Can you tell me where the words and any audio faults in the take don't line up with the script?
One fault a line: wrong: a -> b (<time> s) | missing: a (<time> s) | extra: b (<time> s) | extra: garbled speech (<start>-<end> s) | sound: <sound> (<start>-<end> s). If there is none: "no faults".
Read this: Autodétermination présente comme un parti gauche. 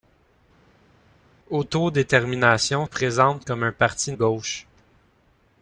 no faults